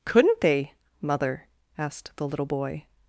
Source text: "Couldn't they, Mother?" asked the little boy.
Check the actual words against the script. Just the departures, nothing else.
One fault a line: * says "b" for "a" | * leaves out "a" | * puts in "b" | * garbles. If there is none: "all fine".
all fine